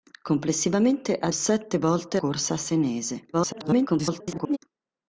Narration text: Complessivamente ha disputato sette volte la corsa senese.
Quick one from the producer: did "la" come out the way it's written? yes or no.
no